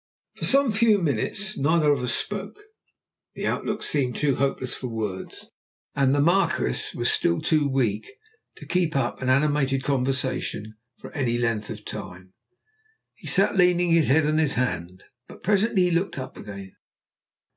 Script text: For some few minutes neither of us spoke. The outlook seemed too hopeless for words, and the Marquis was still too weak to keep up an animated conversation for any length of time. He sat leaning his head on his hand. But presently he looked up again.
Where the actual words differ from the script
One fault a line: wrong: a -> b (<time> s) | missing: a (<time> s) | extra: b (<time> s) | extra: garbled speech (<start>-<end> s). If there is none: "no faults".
no faults